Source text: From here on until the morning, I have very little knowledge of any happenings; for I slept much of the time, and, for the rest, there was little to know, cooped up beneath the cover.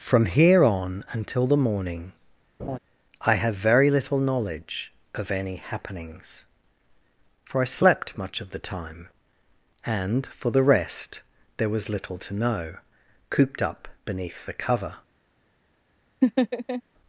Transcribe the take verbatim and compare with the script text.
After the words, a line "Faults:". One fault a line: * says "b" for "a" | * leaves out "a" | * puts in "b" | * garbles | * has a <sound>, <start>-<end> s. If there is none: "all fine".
From here on until the morning, I have very little knowledge of any happenings; for I slept much of the time, and, for the rest, there was little to know, cooped up beneath the cover.
Faults:
* has a laugh, 2.6-2.8 s
* has a laugh, 16.2-16.8 s